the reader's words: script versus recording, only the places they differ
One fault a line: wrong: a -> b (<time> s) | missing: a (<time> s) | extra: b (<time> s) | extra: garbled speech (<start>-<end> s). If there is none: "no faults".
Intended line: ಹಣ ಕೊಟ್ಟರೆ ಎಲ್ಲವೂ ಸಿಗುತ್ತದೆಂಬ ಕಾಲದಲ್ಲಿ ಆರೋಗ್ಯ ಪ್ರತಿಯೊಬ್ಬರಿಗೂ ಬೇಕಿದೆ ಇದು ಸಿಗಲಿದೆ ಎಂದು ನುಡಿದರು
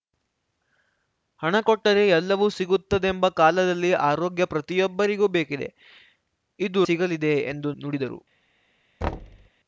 no faults